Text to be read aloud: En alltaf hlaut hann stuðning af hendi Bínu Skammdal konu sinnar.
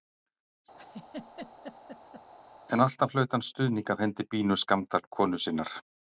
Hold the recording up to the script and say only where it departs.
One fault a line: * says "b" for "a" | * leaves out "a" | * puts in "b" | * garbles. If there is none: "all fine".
all fine